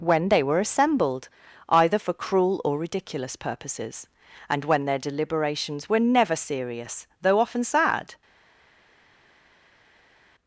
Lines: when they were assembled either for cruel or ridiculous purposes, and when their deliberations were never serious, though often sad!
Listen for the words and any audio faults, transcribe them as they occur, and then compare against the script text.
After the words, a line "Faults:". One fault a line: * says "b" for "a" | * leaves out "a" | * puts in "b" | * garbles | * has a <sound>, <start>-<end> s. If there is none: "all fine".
when they were assembled either for cruel or ridiculous purposes, and when their deliberations were never serious, though often sad!
Faults:
all fine